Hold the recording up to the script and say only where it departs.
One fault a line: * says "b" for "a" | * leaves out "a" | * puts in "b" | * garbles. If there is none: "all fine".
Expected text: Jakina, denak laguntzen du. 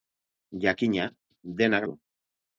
* leaves out "laguntzen"